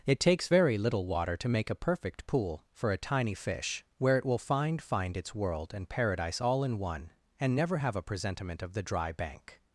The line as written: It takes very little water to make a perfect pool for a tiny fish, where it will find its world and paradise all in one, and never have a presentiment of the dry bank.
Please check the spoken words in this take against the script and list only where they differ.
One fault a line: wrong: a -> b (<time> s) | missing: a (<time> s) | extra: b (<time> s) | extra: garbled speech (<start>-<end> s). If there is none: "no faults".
extra: find (4.8 s)